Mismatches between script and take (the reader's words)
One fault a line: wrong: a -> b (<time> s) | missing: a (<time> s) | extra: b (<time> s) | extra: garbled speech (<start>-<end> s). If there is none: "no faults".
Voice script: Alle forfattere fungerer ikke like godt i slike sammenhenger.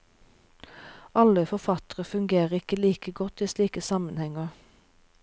no faults